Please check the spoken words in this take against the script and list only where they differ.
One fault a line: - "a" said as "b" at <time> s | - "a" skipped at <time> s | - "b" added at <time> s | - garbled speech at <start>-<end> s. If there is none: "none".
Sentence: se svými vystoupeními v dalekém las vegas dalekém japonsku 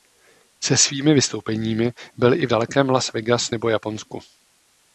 - "byl i" added at 2.2 s
- "dalekém" said as "nebo" at 3.5 s